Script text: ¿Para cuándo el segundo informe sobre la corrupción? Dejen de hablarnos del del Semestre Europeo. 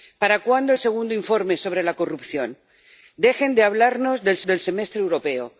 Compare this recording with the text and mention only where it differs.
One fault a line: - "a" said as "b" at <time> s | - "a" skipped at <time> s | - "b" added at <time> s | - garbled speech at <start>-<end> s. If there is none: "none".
none